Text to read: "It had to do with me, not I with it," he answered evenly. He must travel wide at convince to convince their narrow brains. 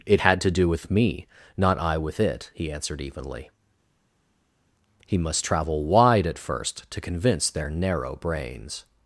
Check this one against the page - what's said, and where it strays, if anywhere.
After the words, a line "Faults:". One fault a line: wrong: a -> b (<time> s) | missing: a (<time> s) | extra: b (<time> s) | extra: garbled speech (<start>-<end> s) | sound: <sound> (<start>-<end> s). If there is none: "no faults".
"It had to do with me, not I with it," he answered evenly. He must travel wide at first to convince their narrow brains.
Faults:
wrong: convince -> first (6.4 s)